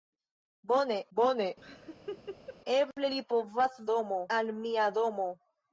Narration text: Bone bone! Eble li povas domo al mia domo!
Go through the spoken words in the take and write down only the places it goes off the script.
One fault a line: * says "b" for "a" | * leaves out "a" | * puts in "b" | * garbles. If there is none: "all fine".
all fine